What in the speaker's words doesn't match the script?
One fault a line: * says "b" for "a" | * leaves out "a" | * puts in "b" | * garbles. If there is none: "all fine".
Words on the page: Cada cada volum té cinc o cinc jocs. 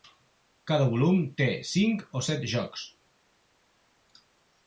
* leaves out "cada"
* says "set" for "cinc"